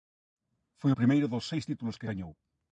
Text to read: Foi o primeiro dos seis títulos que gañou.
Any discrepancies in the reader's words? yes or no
no